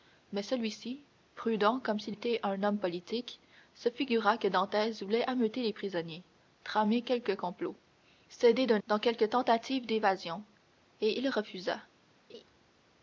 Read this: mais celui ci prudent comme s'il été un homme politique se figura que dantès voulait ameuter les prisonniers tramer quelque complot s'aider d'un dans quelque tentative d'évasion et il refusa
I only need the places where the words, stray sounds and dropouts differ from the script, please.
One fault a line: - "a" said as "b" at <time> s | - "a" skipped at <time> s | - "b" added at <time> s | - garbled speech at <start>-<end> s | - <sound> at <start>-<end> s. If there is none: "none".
- laugh at 12.3-12.4 s